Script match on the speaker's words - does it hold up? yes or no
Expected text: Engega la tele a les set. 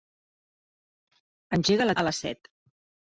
no